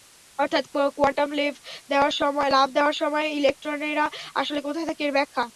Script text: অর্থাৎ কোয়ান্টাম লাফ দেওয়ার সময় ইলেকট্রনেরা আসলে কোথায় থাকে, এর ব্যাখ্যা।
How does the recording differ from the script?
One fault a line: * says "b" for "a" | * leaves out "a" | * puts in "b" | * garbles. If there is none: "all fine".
all fine